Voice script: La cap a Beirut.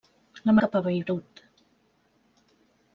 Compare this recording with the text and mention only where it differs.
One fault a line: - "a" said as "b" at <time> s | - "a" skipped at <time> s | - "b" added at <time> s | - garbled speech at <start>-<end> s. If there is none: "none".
none